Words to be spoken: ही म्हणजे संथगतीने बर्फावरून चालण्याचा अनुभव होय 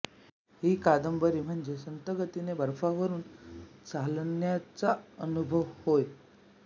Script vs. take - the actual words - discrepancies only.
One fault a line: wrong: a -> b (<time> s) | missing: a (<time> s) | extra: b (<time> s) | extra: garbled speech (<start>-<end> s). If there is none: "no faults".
extra: कादंबरी (0.8 s)